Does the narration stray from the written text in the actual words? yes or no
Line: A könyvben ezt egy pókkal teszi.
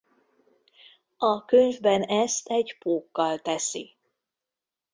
no